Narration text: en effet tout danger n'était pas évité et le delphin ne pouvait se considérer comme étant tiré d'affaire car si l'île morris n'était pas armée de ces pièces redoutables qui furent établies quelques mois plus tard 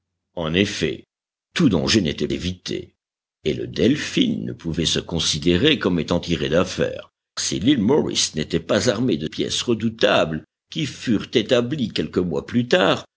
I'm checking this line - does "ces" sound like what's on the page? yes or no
no